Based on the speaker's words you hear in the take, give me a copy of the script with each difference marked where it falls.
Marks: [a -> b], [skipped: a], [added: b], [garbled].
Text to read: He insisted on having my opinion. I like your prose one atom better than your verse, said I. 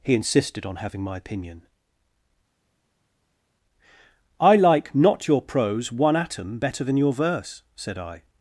He insisted on having my opinion. I like [added: not] your prose one atom better than your verse, said I.